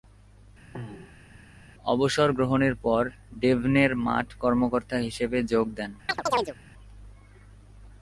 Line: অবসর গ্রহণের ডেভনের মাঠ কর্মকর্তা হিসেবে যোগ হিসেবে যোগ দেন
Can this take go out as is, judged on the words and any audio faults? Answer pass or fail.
fail